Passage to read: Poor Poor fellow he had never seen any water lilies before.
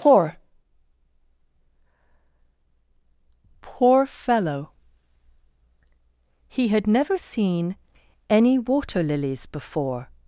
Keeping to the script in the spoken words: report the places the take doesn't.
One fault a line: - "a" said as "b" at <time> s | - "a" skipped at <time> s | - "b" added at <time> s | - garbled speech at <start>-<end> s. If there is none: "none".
none